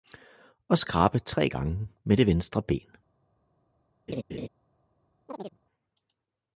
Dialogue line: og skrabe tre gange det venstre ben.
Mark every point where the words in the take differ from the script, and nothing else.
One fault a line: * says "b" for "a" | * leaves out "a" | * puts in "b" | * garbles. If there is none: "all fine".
* puts in "med"